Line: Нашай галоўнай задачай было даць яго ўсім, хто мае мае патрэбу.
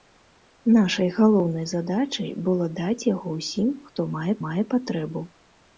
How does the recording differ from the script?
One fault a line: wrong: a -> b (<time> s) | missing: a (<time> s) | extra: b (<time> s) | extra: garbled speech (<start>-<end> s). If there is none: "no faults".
no faults